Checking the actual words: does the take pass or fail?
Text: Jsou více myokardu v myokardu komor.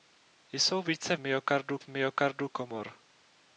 pass